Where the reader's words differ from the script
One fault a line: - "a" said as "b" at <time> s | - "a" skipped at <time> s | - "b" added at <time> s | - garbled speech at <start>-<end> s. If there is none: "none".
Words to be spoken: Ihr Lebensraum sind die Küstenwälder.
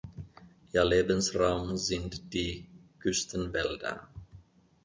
none